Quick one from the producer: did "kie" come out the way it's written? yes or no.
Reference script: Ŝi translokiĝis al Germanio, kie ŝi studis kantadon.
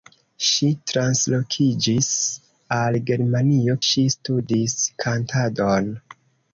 no